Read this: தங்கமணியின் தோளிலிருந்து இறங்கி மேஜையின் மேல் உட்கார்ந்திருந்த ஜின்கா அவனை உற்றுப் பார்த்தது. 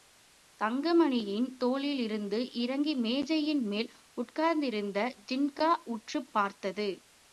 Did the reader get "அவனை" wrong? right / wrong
wrong